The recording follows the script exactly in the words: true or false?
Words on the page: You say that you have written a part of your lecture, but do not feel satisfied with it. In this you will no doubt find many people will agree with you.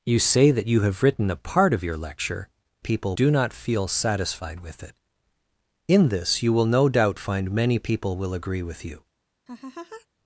false